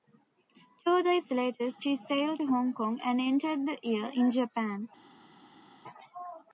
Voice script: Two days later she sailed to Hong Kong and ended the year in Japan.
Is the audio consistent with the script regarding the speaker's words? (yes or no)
yes